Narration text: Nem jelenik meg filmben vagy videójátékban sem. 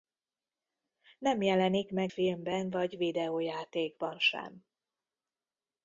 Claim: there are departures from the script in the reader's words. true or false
false